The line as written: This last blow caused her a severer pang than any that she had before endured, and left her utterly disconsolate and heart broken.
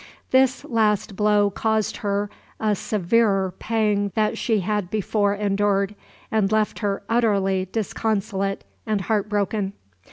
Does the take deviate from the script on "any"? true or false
true